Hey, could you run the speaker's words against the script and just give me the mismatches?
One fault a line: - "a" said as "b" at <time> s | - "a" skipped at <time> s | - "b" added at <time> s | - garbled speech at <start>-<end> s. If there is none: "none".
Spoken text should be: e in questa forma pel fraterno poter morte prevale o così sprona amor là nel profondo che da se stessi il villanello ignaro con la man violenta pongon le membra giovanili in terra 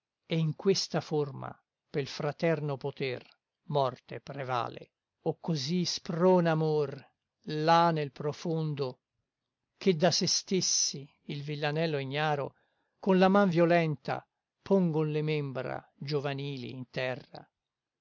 none